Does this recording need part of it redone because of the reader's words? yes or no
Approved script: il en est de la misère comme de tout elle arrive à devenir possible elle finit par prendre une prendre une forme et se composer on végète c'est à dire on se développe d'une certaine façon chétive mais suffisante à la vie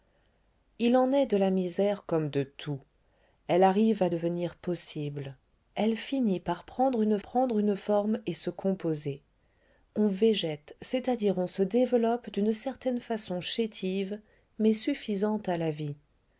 no